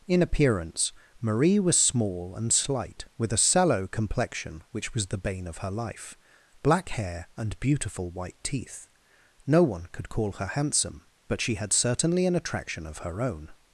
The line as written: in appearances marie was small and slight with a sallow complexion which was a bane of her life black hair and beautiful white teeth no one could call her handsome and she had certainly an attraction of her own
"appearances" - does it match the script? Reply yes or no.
no